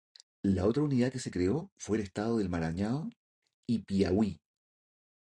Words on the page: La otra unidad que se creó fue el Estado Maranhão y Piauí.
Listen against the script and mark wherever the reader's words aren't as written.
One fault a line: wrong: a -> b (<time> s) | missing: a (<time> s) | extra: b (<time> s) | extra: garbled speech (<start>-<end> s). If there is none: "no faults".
extra: del (2.4 s)